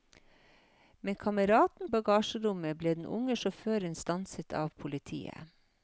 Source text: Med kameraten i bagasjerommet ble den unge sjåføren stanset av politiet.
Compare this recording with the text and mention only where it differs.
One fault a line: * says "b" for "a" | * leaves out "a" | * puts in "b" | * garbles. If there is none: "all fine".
all fine